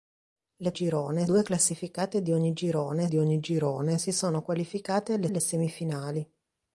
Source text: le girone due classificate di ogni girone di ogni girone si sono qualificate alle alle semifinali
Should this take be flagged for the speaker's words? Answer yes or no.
no